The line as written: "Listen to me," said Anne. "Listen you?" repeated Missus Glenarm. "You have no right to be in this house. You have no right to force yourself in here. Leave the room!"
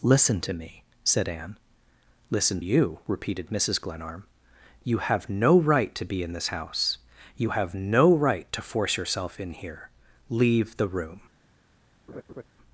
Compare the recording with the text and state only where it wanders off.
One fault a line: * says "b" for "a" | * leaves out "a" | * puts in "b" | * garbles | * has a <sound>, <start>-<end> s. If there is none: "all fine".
* has a laugh, 12.1-12.4 s